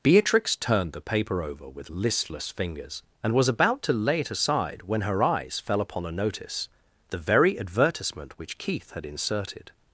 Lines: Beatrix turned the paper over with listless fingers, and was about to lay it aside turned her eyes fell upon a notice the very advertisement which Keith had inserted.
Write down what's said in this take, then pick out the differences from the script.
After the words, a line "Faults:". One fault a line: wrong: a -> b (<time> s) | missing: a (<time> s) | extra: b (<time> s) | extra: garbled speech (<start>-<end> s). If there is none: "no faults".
Beatrix turned the paper over with listless fingers, and was about to lay it aside when her eyes fell upon a notice the very advertisement which Keith had inserted.
Faults:
wrong: turned -> when (4.9 s)